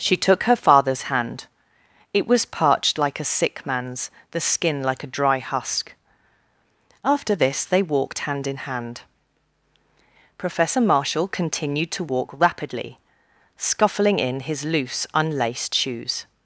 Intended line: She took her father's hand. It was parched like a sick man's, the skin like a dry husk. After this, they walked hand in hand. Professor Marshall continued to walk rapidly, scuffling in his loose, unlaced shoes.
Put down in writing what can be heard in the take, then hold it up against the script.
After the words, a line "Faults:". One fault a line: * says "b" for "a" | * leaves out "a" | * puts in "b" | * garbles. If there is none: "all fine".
She took her father's hand. It was parched like a sick man's, the skin like a dry husk. After this, they walked hand in hand. Professor Marshall continued to walk rapidly, scuffling in his loose, unlaced shoes.
Faults:
all fine